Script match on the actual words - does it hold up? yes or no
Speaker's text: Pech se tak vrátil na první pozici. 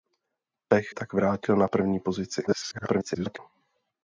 no